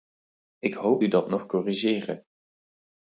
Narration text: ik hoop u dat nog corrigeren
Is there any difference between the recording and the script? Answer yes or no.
no